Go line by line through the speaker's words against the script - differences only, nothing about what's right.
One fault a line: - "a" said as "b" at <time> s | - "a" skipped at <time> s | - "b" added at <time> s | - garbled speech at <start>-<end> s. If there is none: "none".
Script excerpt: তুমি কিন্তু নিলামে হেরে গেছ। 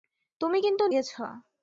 - "নিলামে হেরে" skipped at 0.8 s